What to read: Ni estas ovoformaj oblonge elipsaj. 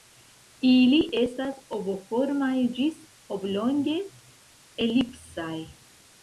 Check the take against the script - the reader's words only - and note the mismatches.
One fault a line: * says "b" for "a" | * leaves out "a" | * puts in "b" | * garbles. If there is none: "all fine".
* says "Ili" for "Ni"
* puts in "ĝis"